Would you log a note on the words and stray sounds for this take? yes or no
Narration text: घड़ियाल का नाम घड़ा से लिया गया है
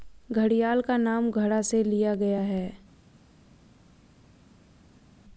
no